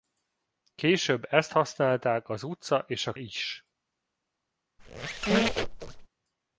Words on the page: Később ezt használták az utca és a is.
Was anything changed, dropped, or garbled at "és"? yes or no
no